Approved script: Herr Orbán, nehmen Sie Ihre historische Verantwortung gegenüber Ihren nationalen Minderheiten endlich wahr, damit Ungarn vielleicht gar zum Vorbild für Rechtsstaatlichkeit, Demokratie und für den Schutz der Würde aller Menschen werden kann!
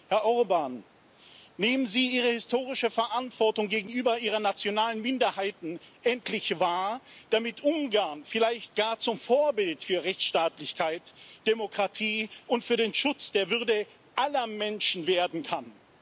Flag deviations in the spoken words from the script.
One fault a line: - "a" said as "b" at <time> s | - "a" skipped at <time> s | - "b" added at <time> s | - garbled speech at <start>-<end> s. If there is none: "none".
none